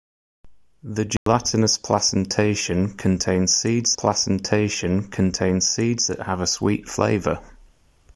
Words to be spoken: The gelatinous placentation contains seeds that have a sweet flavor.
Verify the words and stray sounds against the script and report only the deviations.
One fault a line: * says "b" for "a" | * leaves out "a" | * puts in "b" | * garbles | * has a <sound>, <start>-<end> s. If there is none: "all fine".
* has a dropout, 1.2-1.3 s
* puts in "placentation contains seeds"